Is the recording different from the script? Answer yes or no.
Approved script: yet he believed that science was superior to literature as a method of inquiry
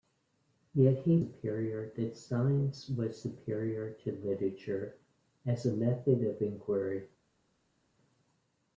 yes